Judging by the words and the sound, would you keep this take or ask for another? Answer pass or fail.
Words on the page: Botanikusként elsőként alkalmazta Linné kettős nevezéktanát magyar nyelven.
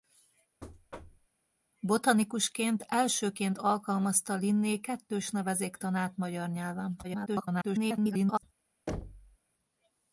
fail